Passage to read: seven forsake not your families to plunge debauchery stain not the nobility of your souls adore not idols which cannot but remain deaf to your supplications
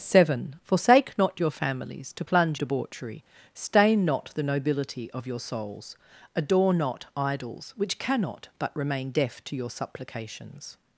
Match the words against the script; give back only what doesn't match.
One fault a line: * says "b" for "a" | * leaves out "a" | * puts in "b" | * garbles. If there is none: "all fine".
all fine